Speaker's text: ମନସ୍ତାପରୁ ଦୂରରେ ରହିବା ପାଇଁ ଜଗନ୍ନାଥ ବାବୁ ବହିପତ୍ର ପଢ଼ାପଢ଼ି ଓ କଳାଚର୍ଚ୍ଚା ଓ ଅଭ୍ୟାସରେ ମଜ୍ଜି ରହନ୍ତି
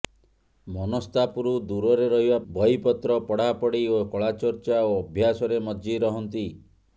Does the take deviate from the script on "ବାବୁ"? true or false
true